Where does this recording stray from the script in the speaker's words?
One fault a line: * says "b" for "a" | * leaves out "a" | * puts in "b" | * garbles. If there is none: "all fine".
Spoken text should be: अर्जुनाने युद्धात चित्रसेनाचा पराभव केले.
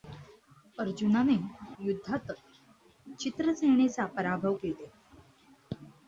all fine